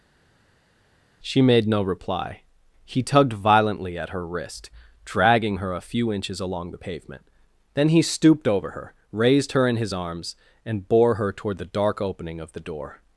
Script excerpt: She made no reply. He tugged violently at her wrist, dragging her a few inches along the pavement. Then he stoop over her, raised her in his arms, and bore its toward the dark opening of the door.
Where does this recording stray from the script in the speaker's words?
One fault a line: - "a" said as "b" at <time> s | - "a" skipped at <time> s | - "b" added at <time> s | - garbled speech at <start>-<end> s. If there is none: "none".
- "stoop" said as "stooped" at 8.0 s
- "its" said as "her" at 11.2 s